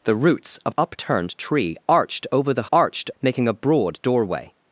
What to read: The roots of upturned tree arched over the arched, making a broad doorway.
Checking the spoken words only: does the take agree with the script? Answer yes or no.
yes